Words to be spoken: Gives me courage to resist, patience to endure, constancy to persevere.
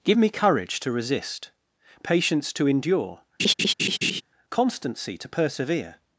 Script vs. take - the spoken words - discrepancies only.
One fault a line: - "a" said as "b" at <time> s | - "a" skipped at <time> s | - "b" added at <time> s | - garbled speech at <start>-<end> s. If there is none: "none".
- "Gives" said as "Give" at 0.0 s